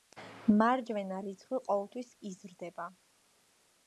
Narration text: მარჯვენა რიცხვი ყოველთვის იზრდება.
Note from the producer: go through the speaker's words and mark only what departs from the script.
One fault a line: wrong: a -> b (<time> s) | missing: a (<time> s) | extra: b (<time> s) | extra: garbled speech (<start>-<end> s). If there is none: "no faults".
no faults